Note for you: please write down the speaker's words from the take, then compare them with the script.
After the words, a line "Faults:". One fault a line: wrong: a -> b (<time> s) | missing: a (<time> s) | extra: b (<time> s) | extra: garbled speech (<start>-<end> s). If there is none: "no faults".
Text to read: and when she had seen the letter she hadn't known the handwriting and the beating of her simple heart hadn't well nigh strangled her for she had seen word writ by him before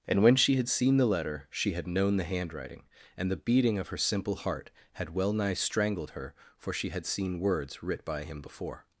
and when she had seen the letter she had known the handwriting and the beating of her simple heart had well nigh strangled her for she had seen words writ by him before
Faults:
wrong: hadn't -> had (1.7 s)
wrong: hadn't -> had (4.9 s)
wrong: word -> words (7.4 s)